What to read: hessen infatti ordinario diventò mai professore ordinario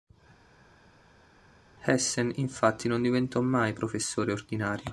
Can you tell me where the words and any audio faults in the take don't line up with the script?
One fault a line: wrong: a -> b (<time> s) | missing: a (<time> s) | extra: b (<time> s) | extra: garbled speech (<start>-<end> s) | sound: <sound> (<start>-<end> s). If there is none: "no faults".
wrong: ordinario -> non (2.9 s)